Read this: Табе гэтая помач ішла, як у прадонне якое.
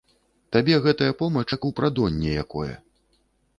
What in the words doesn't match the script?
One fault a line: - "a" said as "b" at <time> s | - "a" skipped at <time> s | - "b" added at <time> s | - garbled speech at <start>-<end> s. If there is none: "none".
- "ішла" skipped at 1.4 s